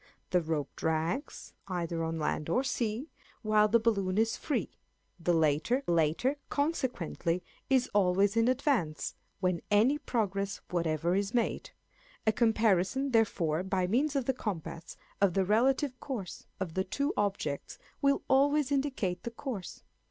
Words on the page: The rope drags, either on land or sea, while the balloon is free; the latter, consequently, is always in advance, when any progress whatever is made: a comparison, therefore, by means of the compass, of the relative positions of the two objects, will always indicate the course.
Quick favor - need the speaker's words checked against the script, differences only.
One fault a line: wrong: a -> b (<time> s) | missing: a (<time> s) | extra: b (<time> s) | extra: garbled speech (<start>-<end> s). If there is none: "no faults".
extra: latter (5.9 s)
wrong: positions -> course (15.9 s)